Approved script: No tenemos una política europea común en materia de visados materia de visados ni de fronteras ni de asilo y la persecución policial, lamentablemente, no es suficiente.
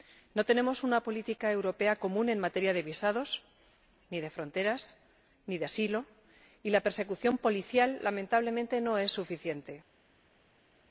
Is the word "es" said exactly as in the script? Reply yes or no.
yes